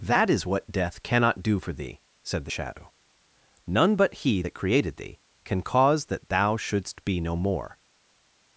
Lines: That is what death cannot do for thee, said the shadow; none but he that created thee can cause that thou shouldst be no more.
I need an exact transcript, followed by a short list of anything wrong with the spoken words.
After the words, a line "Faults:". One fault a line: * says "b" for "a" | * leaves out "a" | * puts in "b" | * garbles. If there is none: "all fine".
That is what death cannot do for thee, said the shadow; none but he that created thee can cause that thou shouldst be no more.
Faults:
all fine